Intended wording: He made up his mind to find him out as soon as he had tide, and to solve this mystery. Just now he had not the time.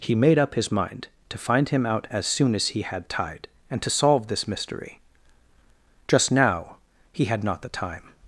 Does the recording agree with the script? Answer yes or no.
yes